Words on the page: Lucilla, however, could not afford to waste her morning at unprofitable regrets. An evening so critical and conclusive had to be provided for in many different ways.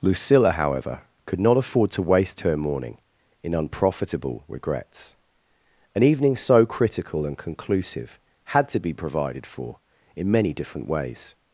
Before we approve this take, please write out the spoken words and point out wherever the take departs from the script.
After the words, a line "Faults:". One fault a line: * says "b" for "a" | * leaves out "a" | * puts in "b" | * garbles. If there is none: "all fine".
Lucilla, however, could not afford to waste her morning in unprofitable regrets. An evening so critical and conclusive had to be provided for in many different ways.
Faults:
* says "in" for "at"